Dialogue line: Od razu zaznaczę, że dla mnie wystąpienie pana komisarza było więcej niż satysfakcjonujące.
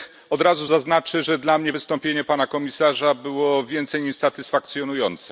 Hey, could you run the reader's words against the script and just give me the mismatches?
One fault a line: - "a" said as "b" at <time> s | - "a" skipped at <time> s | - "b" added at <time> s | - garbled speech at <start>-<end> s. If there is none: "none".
none